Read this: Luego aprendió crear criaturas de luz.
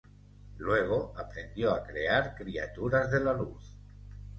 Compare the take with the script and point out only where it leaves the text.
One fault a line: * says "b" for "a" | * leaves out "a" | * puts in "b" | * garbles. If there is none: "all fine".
* puts in "a"
* puts in "la"